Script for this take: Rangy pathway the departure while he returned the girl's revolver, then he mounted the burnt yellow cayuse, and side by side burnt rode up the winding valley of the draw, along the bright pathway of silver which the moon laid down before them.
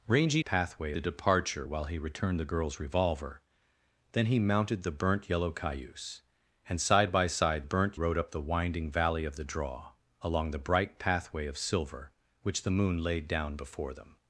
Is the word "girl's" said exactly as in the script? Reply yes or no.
yes